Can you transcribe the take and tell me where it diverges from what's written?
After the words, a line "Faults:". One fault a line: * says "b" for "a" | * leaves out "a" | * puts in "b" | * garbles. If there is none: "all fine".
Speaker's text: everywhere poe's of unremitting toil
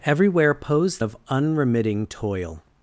everywhere poe's of unremitting toil
Faults:
all fine